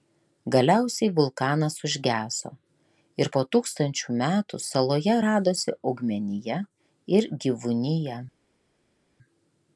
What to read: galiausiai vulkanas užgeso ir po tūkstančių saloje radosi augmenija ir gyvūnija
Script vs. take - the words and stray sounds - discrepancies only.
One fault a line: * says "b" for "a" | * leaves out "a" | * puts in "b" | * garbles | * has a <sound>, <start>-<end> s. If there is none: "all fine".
* puts in "metų"